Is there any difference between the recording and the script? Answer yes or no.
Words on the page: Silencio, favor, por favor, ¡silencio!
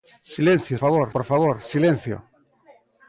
no